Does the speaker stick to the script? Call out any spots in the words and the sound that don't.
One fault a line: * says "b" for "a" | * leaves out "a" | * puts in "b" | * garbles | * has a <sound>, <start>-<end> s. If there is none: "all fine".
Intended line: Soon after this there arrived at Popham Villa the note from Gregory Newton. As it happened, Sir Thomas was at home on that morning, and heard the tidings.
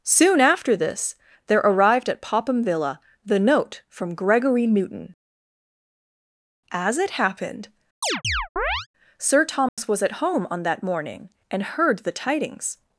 * has a chirp, 8.0-8.9 s
* has a dropout, 9.7-9.8 s